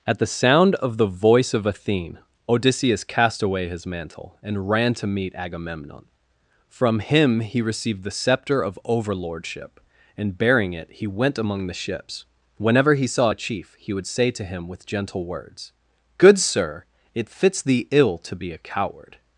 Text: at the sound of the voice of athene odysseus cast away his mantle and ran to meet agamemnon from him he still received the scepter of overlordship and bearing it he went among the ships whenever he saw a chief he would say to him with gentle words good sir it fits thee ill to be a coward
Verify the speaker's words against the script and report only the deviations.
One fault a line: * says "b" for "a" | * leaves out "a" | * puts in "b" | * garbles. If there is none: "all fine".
* leaves out "still"